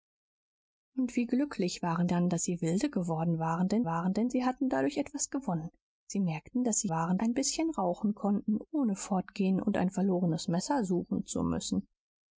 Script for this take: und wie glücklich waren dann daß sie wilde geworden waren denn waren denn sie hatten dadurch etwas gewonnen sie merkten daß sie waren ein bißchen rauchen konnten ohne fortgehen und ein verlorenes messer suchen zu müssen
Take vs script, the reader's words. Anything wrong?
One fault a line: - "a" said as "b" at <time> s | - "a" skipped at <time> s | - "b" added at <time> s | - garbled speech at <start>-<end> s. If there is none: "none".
none